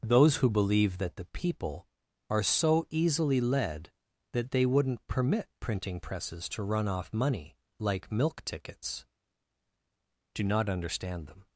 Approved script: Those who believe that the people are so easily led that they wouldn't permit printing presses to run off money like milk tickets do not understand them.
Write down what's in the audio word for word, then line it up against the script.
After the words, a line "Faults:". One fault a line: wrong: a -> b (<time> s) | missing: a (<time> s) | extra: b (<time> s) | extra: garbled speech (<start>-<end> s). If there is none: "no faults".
Those who believe that the people are so easily led that they wouldn't permit printing presses to run off money like milk tickets do not understand them.
Faults:
no faults